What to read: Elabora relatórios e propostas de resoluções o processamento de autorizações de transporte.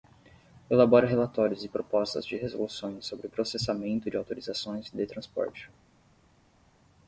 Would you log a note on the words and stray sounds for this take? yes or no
yes